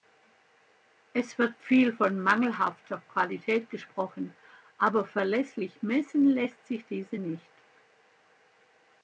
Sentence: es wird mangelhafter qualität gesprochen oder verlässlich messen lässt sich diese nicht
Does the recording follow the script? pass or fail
fail